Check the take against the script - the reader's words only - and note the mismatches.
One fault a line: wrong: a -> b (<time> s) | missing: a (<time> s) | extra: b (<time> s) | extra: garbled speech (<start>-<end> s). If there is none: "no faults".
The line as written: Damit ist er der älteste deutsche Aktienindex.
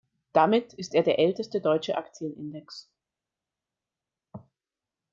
no faults